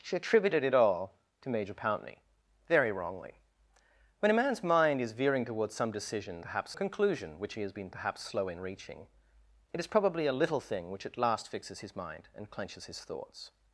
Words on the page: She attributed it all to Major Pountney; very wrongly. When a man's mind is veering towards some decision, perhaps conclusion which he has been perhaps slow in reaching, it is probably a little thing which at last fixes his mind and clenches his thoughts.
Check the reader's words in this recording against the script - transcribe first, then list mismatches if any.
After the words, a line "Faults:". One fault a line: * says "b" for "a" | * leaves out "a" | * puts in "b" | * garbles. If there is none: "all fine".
She attributed it all to Major Pountney; very wrongly. When a man's mind is veering towards some decision, perhaps conclusion which he has been perhaps slow in reaching, it is probably a little thing which at last fixes his mind and clenches his thoughts.
Faults:
all fine